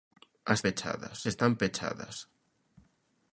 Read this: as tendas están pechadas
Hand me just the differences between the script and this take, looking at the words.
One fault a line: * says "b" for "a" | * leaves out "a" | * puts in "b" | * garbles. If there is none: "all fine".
* says "pechadas" for "tendas"